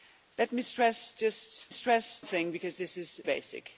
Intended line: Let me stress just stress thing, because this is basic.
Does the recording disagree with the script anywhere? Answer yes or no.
no